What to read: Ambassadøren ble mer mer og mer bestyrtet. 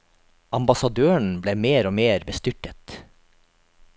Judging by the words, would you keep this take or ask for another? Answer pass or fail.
fail